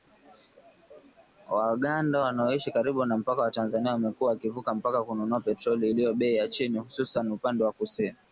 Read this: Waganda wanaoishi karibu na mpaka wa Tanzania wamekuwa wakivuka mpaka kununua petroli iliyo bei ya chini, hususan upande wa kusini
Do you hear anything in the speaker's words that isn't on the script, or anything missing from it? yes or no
no